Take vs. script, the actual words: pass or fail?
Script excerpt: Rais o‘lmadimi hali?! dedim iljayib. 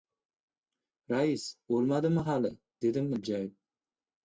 pass